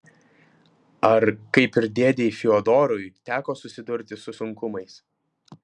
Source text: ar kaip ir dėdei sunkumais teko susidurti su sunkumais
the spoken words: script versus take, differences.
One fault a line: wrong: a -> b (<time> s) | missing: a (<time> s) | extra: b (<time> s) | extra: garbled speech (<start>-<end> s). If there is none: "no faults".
wrong: sunkumais -> fiodorui (2.4 s)